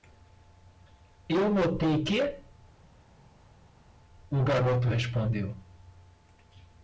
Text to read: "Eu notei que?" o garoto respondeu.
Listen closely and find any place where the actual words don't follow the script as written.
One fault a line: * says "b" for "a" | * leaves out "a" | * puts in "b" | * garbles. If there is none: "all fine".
all fine